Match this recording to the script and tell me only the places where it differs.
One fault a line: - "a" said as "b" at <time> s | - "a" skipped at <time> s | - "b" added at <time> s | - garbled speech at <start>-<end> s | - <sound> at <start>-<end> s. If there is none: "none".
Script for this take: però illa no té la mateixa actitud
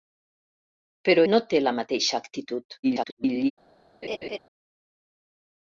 - "illa" skipped at 1.2 s
- garbled speech at 2.8-3.5 s
- laugh at 4.0-4.4 s